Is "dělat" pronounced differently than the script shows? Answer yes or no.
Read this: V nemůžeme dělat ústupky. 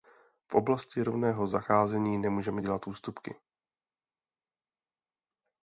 no